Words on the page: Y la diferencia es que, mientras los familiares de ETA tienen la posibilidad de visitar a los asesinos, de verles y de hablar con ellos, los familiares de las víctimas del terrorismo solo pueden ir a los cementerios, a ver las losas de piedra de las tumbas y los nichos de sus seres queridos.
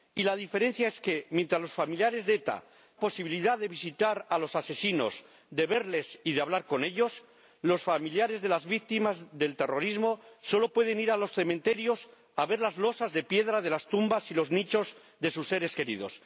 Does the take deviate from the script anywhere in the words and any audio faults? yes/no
yes